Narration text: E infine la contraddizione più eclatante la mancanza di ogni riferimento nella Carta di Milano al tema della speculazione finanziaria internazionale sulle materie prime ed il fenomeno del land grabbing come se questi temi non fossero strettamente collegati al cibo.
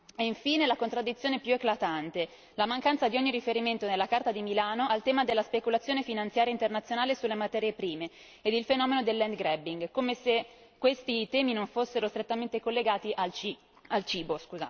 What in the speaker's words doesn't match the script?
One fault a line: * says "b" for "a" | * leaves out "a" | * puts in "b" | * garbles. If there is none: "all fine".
all fine